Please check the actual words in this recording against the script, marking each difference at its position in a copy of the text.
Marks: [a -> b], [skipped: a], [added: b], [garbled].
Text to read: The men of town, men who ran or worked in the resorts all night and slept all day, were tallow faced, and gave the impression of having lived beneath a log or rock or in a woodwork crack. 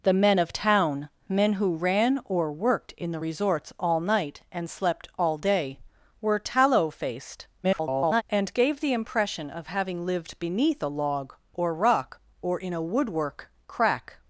The men of town, men who ran or worked in the resorts all night and slept all day, were tallow faced, [garbled] and gave the impression of having lived beneath a log or rock or in a woodwork crack.